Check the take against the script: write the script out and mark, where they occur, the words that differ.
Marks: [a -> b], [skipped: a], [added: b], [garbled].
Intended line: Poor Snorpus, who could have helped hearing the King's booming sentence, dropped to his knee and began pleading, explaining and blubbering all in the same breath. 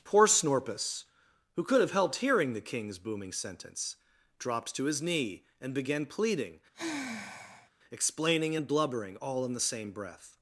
Poor Snorpus, who could have helped hearing the King's booming sentence, dropped to his knee and began pleading, explaining and blubbering all in the same breath.